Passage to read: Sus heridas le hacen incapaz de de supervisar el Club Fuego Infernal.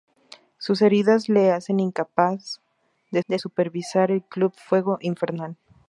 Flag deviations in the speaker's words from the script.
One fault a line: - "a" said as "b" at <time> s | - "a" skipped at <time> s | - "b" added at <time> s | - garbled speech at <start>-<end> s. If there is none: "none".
none